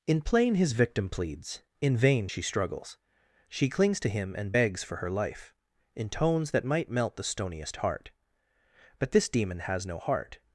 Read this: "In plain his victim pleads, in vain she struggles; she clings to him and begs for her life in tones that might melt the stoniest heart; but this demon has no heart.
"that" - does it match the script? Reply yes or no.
yes